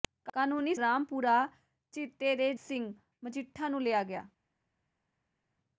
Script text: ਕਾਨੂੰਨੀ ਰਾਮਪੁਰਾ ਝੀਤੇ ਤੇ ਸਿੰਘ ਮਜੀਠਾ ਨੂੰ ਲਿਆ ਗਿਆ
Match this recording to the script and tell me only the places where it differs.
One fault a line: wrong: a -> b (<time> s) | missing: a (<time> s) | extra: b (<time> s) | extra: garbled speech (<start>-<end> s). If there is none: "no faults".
no faults